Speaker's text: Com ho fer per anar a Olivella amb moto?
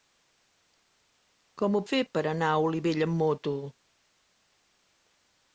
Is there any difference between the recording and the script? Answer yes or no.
no